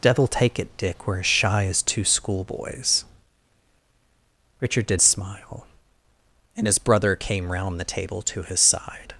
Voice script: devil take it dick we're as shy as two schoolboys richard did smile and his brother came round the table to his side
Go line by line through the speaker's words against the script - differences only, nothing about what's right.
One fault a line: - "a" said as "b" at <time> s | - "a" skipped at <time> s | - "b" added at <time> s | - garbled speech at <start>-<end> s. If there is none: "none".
none